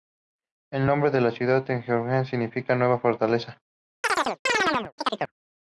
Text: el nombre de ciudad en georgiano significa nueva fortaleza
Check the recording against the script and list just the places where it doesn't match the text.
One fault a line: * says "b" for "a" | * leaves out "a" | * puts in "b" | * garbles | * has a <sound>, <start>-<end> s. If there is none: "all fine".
* puts in "la"
* has a chirp, 4.0-5.3 s